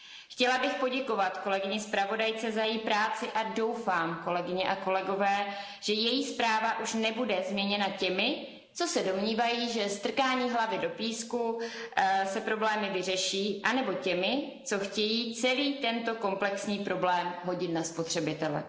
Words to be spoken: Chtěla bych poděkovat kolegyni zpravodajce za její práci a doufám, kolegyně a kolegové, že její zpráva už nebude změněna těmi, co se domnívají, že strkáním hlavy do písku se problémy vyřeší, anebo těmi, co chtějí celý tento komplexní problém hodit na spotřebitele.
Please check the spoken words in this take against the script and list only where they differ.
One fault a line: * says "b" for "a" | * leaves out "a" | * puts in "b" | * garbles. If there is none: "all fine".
all fine